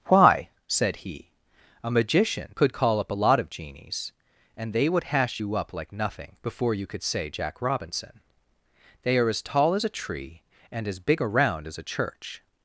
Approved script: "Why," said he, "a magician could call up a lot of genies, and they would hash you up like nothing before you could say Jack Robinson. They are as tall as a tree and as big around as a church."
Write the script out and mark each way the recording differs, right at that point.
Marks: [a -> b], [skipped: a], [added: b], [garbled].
"Why," said he, "a magician could call up a lot of genies, and they would hash you up like nothing before you could say Jack Robinson. They are as tall as a tree and as big around as a church."